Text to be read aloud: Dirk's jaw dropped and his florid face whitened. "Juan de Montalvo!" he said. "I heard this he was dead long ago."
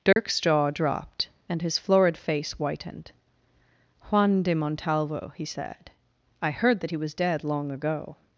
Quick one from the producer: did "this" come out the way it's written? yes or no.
no